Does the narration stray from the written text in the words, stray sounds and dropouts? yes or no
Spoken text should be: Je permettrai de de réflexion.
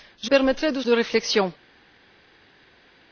no